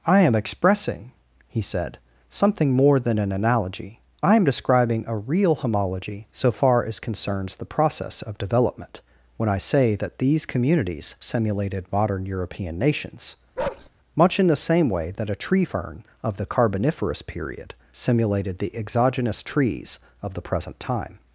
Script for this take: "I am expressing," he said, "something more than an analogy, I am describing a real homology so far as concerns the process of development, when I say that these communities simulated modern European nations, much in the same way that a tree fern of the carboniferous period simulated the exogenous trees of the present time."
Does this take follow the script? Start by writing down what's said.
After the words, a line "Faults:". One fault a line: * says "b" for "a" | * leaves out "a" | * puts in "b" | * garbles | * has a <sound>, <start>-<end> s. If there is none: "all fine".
"I am expressing," he said, "something more than an analogy, I am describing a real homology so far as concerns the process of development, when I say that these communities simulated modern European nations, much in the same way that a tree fern of the carboniferous period simulated the exogenous trees of the present time."
Faults:
* has a bark, 13.6-13.9 s